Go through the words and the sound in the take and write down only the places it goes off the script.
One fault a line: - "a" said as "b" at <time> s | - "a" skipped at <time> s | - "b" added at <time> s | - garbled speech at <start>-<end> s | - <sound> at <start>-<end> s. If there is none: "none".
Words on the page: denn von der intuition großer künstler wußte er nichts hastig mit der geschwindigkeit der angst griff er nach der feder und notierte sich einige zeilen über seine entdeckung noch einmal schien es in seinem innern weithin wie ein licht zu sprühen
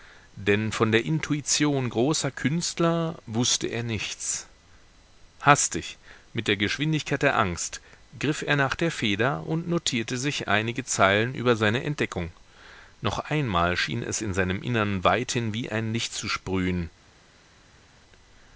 none